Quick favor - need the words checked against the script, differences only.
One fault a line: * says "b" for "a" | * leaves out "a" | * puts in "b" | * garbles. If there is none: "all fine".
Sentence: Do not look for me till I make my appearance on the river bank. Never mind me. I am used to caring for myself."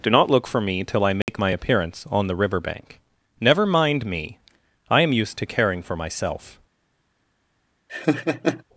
all fine